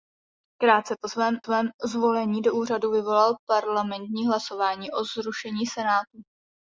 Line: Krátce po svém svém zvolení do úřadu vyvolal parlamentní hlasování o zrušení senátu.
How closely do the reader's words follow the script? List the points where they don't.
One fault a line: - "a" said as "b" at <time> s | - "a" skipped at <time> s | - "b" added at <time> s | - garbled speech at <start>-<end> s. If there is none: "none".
none